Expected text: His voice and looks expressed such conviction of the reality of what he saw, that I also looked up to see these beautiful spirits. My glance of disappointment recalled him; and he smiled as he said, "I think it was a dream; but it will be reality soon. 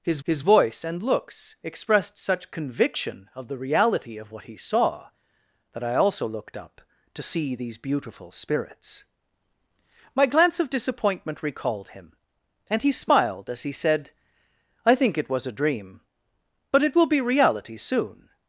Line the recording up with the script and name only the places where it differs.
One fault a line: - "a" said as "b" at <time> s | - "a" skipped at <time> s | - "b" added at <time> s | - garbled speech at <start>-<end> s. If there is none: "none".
- "his" added at 0.2 s